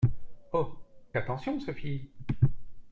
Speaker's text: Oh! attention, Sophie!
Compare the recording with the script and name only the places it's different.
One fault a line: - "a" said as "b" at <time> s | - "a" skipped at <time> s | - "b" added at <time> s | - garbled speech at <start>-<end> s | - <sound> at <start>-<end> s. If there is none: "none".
none